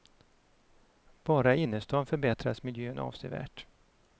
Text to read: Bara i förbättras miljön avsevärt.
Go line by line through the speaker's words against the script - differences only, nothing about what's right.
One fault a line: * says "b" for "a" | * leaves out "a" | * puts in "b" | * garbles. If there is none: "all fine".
* puts in "innerstan"